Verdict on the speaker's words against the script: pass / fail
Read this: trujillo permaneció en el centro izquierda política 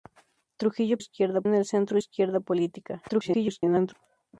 fail